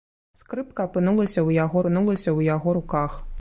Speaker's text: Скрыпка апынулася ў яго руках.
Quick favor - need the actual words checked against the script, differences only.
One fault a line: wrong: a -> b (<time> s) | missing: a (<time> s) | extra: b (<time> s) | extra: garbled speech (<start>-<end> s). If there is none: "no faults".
extra: апынулася ў яго (1.8 s)